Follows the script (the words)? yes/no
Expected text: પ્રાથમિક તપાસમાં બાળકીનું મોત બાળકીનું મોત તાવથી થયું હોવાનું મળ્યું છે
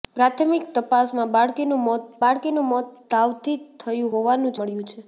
yes